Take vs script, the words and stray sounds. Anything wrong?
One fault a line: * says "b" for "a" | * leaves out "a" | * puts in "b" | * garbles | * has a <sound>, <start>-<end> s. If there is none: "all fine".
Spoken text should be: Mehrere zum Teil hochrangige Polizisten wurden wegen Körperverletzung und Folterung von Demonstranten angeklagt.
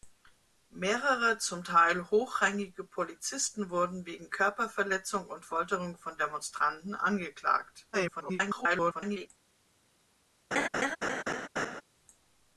* garbles
* has a laugh, 10.5-11.8 s